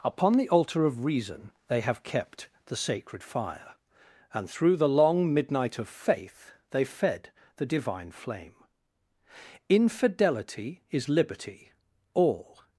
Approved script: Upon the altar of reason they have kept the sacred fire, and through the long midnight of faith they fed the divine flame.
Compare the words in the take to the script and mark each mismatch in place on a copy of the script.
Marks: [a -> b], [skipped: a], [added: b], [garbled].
Upon the altar of reason they have kept the sacred fire, and through the long midnight of faith they fed the divine flame. [added: Infidelity is liberty all]